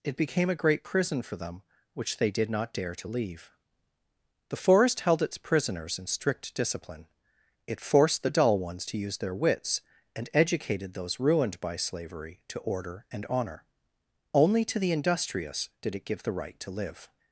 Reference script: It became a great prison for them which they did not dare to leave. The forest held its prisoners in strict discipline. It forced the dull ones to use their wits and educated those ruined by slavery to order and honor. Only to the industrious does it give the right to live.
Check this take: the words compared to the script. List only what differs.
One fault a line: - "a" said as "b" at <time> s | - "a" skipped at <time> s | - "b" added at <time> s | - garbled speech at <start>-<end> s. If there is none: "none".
- "does" said as "did" at 15.8 s